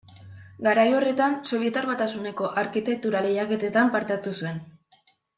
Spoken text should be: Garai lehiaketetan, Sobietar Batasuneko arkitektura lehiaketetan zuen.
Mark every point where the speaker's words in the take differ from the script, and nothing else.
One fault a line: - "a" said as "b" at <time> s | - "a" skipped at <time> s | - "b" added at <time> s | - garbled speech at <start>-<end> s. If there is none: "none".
- "lehiaketetan" said as "horretan" at 1.0 s
- "parte hartu" added at 4.0 s